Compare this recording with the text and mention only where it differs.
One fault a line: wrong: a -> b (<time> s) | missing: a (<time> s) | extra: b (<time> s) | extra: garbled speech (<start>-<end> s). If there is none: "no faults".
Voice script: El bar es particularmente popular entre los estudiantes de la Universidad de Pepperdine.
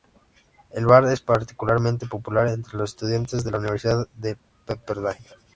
no faults